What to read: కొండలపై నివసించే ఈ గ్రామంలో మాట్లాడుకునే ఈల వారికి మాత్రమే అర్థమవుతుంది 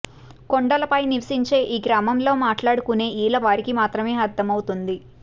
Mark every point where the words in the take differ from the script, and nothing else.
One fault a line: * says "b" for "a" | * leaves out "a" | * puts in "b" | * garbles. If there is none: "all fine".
all fine